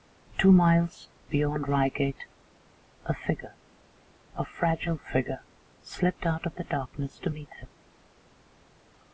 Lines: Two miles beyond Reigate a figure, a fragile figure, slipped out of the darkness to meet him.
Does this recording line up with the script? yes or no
yes